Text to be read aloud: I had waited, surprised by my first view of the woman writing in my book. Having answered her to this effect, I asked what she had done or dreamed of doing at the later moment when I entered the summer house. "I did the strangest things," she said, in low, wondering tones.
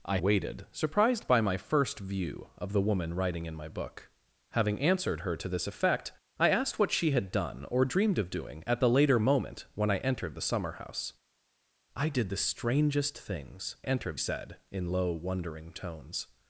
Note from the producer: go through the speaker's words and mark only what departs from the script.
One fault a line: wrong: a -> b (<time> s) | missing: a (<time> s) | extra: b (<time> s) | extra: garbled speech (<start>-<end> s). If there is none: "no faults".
missing: had (0.2 s)
wrong: she -> entered (13.8 s)